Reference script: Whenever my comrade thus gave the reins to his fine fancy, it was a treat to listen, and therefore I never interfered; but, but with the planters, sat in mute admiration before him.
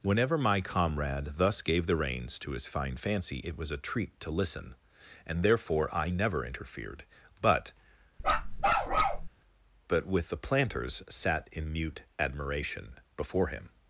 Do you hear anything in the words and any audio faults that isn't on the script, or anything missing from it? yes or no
yes